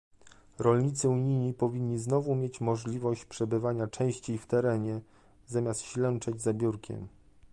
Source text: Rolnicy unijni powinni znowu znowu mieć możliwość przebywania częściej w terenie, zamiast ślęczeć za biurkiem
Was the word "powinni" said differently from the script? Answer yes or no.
no